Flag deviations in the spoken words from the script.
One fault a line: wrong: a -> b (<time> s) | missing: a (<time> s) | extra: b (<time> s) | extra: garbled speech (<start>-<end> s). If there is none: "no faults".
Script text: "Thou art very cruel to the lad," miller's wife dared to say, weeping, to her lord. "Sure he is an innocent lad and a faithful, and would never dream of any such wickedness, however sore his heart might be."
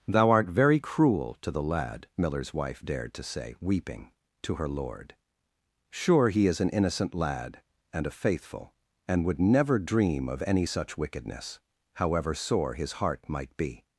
no faults